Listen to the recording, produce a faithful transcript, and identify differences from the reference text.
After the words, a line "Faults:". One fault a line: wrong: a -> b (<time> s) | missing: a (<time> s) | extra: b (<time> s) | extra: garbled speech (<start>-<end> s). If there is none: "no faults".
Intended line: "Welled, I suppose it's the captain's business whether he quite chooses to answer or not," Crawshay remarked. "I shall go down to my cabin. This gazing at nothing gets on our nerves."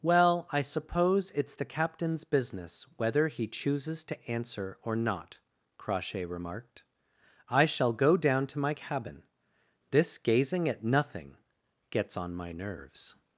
"Well, I suppose it's the captain's business whether he chooses to answer or not," Crawshay remarked. "I shall go down to my cabin. This gazing at nothing gets on my nerves."
Faults:
wrong: Welled -> Well (0.0 s)
missing: quite (3.5 s)
wrong: our -> my (12.3 s)